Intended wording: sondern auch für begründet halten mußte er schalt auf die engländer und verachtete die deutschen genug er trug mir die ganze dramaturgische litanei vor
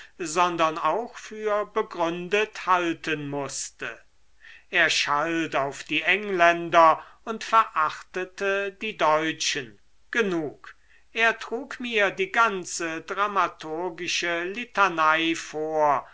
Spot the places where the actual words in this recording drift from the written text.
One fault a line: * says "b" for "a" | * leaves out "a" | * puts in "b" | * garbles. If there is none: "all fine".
all fine